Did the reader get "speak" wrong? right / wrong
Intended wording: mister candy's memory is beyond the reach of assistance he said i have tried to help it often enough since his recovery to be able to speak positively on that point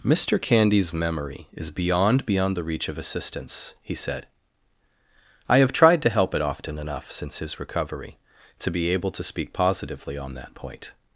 right